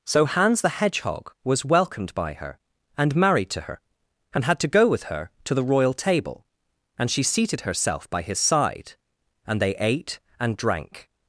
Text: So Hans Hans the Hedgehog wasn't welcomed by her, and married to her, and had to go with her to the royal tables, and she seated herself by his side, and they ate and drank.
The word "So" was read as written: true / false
true